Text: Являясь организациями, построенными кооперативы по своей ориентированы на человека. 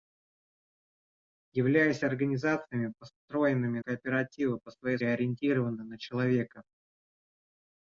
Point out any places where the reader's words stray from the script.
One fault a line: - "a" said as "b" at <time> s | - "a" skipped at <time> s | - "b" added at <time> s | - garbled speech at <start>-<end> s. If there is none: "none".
none